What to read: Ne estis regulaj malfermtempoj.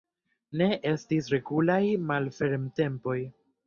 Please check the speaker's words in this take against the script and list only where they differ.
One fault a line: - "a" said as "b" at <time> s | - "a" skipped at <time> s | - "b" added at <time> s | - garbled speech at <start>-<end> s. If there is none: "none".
none